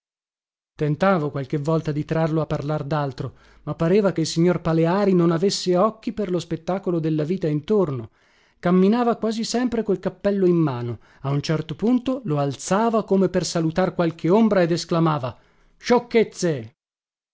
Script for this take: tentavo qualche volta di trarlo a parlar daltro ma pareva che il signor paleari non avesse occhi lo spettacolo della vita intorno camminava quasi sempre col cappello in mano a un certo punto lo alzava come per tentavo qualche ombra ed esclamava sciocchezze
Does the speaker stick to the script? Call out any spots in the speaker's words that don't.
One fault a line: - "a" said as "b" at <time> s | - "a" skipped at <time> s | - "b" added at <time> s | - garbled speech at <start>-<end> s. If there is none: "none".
- "per" added at 6.1 s
- "tentavo" said as "salutar" at 13.4 s